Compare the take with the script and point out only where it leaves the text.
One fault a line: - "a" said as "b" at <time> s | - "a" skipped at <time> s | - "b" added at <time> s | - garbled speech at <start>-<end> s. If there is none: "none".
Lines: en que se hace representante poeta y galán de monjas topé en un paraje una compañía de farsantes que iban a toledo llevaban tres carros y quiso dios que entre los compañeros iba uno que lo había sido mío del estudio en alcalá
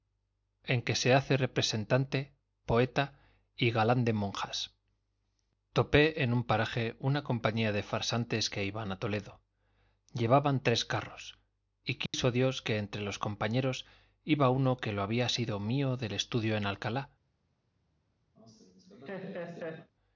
none